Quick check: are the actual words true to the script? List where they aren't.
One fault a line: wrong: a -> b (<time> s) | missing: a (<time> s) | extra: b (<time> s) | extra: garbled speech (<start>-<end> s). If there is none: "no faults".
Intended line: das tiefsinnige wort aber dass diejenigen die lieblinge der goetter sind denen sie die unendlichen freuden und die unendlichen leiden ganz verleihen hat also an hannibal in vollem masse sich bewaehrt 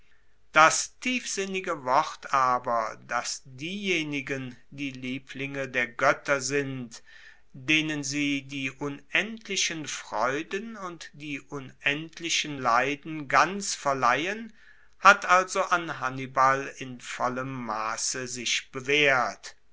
no faults